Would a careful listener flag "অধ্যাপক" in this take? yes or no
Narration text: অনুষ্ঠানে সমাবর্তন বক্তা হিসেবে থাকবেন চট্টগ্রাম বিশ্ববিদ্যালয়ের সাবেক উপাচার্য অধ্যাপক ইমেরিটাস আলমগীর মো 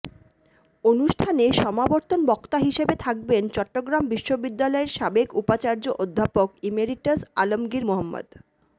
no